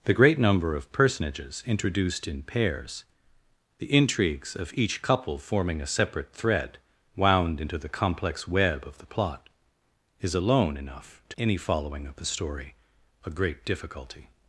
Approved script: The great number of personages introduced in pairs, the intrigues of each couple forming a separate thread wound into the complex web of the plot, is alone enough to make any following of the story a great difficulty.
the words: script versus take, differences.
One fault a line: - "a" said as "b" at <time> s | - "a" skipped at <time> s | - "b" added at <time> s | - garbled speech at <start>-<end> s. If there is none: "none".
- "make" skipped at 11.4 s